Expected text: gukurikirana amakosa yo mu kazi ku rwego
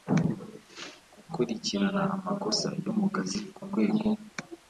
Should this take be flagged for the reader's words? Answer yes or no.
no